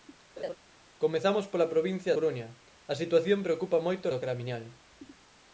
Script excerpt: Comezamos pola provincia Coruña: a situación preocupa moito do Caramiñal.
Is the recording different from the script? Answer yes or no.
no